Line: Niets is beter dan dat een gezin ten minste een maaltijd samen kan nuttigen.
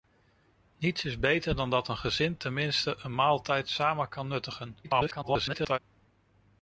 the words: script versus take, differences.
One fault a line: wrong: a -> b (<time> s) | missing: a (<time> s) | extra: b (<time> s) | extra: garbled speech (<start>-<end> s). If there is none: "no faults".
extra: garbled speech (4.8-5.8 s)